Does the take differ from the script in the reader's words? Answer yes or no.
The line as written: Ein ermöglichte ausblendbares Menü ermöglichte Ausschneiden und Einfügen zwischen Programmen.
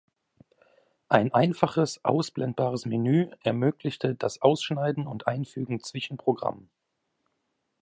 yes